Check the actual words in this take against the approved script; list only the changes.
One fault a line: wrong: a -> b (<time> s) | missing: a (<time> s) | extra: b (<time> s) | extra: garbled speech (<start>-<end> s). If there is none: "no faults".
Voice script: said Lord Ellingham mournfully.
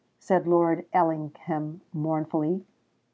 no faults